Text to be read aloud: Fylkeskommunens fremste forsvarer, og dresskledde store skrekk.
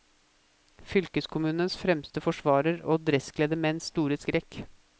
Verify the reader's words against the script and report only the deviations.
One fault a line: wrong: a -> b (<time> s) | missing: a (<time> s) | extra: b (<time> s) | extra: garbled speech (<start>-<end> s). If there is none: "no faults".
extra: menns (3.7 s)